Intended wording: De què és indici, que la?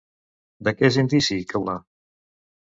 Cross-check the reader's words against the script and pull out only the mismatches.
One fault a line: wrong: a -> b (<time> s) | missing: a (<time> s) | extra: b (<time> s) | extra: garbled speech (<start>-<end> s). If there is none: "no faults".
no faults